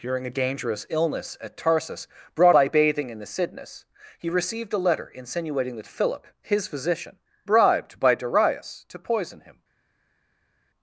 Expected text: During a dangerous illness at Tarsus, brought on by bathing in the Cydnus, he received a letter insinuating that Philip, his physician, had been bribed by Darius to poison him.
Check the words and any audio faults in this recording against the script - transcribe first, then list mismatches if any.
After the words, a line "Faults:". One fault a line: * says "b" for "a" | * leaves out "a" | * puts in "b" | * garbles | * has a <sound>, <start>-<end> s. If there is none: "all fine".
During a dangerous illness at Tarsus, brought by bathing in the Cydnus, he received a letter insinuating that Philip, his physician, bribed by Darius to poison him.
Faults:
* leaves out "on"
* leaves out "had been"